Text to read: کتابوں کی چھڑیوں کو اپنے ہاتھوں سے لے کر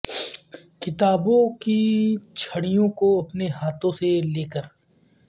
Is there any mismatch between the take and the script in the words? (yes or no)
no